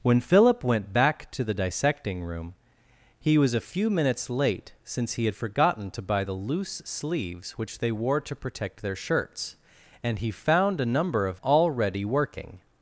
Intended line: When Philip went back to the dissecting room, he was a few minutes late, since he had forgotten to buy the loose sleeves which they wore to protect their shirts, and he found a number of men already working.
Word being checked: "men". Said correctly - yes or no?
no